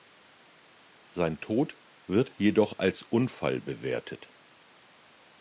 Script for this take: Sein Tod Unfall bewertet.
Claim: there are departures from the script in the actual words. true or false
true